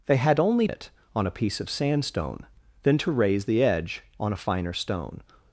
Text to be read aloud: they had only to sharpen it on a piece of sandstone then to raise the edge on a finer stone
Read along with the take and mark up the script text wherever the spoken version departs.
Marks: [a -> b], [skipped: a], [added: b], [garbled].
they had only [skipped: to sharpen] it on a piece of sandstone then to raise the edge on a finer stone